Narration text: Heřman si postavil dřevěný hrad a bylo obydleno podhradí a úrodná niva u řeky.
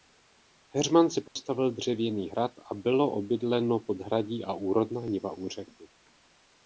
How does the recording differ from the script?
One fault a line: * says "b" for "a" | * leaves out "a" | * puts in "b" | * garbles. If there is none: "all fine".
all fine